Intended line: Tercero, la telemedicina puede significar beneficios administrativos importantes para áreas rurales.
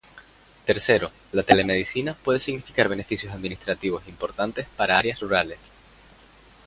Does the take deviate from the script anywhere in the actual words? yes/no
no